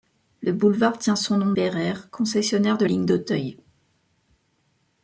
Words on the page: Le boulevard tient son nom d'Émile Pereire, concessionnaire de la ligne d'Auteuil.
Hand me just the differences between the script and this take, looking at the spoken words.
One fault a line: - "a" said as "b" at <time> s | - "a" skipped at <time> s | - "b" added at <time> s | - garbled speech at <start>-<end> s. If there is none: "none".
- "d'Émile" skipped at 1.5 s
- "la" skipped at 2.9 s